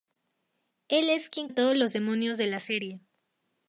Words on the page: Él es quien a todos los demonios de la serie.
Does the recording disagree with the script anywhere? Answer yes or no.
no